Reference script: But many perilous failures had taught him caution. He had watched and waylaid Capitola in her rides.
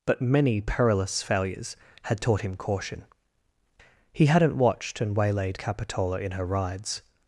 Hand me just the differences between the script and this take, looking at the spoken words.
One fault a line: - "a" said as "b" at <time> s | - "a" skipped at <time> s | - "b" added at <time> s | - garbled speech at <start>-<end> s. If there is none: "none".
- "had" said as "hadn't" at 4.2 s